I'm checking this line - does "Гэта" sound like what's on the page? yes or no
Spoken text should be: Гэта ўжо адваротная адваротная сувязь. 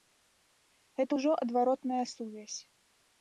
yes